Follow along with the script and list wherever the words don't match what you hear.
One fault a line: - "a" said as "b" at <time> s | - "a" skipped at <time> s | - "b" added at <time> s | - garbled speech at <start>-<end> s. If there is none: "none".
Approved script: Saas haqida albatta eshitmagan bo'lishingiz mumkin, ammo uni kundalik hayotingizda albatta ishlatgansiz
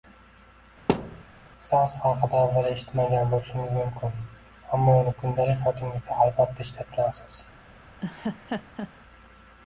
- "albatta" said as "avval" at 2.4 s